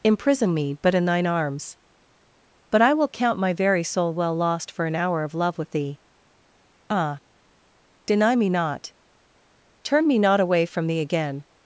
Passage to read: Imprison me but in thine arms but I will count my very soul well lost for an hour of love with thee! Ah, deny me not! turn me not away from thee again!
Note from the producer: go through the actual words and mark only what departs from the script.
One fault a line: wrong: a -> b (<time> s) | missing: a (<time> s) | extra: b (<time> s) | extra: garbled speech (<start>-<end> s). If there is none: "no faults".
no faults